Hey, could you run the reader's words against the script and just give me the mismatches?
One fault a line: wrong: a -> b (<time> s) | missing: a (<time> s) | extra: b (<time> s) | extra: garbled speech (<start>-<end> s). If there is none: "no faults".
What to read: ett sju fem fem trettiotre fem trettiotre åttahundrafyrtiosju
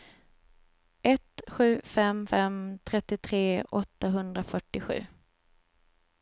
missing: fem trettiotre (3.6 s)